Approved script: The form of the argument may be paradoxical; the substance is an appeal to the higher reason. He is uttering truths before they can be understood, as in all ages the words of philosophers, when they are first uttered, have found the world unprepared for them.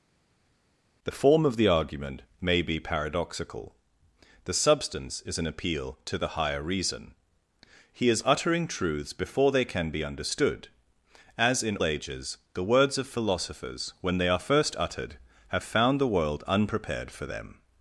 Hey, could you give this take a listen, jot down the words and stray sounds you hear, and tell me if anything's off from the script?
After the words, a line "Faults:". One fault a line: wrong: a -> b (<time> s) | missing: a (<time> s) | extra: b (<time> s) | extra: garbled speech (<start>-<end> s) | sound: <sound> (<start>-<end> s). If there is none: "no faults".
The form of the argument may be paradoxical; the substance is an appeal to the higher reason. He is uttering truths before they can be understood, as in ages the words of philosophers, when they are first uttered, have found the world unprepared for them.
Faults:
missing: all (11.8 s)